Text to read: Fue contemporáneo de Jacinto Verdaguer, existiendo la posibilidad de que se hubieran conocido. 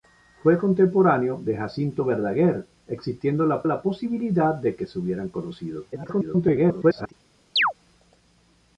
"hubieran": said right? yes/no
yes